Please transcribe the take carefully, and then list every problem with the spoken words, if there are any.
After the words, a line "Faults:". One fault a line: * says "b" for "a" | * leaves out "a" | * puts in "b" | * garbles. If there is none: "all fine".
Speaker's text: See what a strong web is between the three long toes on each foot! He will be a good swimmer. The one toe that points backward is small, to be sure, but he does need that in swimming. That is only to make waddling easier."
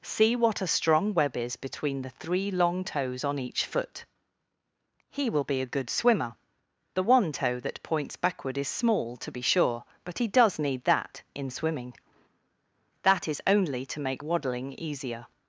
See what a strong web is between the three long toes on each foot! He will be a good swimmer. The one toe that points backward is small, to be sure, but he does need that in swimming. That is only to make waddling easier."
Faults:
all fine